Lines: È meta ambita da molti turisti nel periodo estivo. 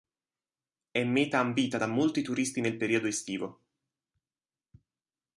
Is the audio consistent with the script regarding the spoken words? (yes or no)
yes